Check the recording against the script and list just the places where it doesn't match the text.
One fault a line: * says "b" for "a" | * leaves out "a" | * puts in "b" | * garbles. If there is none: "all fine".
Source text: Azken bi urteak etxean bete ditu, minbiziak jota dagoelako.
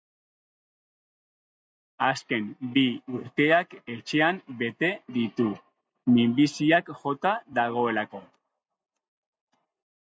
all fine